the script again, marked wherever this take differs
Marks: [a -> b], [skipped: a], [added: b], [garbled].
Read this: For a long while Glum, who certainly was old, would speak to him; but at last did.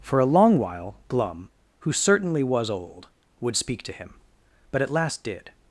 For a long while Glum, who certainly was old, would speak to him; but at last did.